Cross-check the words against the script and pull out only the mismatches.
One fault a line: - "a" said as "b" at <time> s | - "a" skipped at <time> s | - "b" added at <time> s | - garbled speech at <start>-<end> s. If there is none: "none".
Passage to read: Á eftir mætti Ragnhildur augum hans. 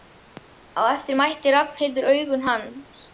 none